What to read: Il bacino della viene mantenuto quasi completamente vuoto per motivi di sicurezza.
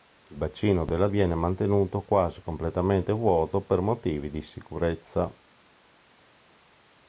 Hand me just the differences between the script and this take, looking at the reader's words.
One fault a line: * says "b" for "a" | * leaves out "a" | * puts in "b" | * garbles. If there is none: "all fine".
all fine